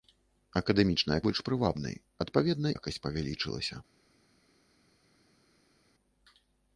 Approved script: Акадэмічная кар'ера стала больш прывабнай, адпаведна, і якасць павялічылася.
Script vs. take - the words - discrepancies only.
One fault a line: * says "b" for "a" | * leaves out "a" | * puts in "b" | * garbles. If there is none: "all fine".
* leaves out "кар'ера стала"
* leaves out "і"